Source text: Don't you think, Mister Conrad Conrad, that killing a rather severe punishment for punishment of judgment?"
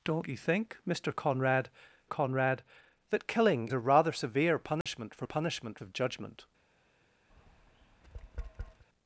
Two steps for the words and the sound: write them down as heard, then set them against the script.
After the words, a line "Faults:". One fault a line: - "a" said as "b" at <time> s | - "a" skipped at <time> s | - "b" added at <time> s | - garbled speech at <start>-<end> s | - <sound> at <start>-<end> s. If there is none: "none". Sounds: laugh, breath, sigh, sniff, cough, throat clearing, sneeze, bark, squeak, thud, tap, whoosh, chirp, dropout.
Don't you think, Mister Conrad Conrad, that killing a rather severe punishment for punishment of judgment?"
Faults:
- dropout at 4.8-4.9 s
- tap at 7.3-8.8 s